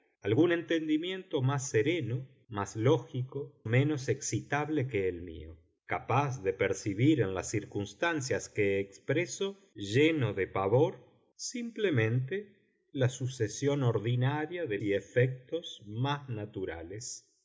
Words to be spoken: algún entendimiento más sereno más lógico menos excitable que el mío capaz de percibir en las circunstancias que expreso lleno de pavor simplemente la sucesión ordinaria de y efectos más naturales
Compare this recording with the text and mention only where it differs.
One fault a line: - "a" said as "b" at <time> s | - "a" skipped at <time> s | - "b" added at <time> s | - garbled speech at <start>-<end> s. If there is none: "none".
none